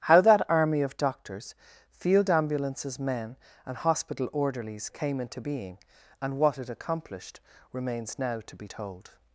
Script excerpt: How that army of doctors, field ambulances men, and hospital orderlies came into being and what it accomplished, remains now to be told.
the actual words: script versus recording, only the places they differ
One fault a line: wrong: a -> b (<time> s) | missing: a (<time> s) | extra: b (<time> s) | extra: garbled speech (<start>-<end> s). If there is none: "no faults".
no faults